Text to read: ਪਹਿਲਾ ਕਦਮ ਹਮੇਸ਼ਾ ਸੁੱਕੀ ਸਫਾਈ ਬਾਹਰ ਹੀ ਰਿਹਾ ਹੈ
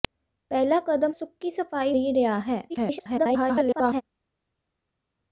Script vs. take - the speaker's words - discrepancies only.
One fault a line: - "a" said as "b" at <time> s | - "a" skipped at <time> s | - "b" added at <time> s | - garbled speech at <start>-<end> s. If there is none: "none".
- "ਹਮੇਸ਼ਾ" skipped at 1.1 s
- "ਬਾਹਰ" skipped at 1.9 s
- garbled speech at 2.7-4.0 s